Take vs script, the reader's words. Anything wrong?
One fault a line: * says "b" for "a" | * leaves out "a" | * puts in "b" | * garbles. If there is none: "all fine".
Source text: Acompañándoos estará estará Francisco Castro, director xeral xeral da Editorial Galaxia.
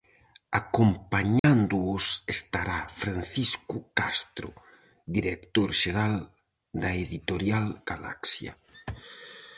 * leaves out "estará"
* leaves out "xeral"